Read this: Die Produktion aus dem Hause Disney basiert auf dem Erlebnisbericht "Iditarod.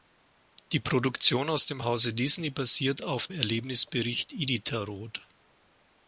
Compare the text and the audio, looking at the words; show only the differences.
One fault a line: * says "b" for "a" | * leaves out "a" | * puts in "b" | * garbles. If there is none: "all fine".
* leaves out "dem"